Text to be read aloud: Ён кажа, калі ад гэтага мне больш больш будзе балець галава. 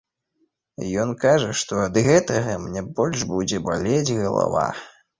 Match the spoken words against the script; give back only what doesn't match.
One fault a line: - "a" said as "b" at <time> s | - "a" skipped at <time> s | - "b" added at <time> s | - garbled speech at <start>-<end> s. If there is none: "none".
- "калі" said as "што" at 1.6 s
- "больш" skipped at 3.3 s